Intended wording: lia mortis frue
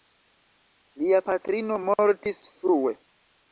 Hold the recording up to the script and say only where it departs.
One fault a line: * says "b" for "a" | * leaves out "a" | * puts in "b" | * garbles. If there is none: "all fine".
* puts in "patrino"